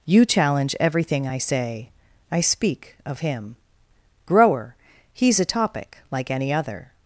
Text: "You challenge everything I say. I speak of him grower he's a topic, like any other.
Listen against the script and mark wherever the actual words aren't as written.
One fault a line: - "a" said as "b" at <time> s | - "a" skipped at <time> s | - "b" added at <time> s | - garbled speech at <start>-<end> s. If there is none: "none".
none